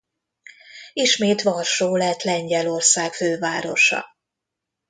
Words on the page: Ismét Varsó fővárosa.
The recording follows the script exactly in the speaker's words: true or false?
false